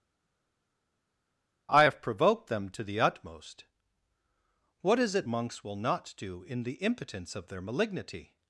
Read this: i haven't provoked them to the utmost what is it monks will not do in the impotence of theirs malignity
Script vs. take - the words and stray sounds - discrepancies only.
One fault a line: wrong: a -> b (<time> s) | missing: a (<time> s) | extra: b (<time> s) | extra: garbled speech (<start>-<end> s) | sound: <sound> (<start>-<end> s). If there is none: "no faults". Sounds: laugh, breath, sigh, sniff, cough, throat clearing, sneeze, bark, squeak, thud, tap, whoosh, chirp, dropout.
wrong: haven't -> have (1.8 s)
wrong: theirs -> their (7.5 s)